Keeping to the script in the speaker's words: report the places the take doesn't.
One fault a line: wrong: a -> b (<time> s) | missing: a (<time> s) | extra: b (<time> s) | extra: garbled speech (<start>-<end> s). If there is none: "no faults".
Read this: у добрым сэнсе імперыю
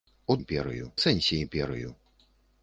wrong: добрым -> імперыю (0.4 s)